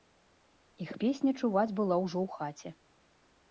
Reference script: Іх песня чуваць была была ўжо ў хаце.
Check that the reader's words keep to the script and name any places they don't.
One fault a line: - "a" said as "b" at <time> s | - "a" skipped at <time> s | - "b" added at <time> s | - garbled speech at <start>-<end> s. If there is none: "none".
- "была" skipped at 2.0 s